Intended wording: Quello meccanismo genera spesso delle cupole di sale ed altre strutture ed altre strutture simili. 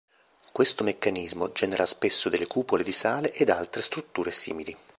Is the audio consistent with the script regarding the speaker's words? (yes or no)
no